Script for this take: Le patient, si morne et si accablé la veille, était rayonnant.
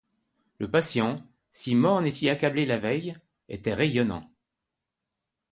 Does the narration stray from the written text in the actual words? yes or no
no